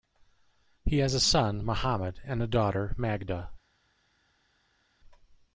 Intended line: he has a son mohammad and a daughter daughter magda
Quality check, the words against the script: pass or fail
fail